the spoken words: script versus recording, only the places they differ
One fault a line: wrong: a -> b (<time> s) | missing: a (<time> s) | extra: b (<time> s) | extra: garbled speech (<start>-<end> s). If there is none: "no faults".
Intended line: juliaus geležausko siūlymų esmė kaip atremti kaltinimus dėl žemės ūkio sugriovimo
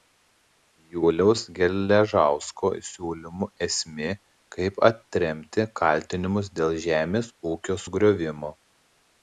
no faults